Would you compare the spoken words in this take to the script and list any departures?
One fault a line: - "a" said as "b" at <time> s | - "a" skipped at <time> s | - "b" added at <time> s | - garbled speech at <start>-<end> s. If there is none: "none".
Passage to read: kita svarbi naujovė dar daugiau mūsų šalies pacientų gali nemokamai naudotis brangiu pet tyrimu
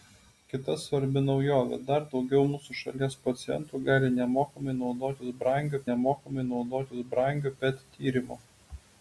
- "nemokamai naudotis brangiu" added at 5.9 s